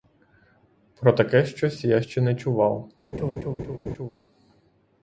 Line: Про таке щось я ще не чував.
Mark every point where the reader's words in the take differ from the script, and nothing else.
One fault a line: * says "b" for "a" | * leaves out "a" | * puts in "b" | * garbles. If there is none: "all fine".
all fine